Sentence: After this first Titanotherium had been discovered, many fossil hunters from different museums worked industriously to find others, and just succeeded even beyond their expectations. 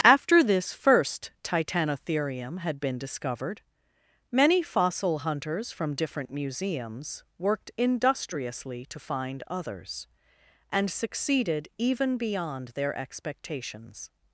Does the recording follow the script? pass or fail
fail